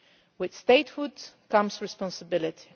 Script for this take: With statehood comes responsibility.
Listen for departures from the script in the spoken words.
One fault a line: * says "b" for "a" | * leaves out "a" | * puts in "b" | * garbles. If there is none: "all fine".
all fine